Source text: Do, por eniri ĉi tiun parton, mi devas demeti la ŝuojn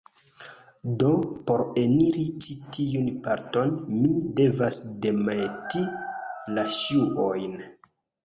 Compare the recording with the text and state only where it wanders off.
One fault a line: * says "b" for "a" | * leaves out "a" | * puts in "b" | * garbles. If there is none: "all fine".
all fine